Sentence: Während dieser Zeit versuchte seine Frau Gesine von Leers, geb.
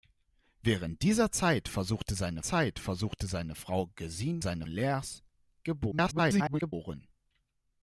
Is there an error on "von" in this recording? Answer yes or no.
yes